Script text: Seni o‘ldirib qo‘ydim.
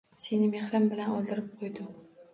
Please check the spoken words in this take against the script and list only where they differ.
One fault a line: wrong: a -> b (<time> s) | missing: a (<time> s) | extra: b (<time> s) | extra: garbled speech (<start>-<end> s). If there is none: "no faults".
extra: mehrim bilan (0.5 s)